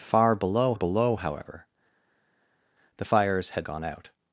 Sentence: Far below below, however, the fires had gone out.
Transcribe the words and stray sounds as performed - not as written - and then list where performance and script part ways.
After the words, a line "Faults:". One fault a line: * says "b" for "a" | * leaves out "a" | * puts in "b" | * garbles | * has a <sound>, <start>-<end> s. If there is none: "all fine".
Far below below, however, the fires had gone out.
Faults:
all fine